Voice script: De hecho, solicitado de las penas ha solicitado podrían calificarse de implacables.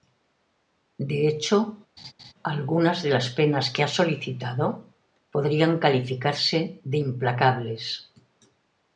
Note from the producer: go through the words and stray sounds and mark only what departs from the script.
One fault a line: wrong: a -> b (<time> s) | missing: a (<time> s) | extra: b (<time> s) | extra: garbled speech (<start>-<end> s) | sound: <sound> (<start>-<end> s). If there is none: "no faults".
sound: laugh (2.0-2.3 s)
wrong: solicitado -> algunas (2.4 s)
extra: que (3.7 s)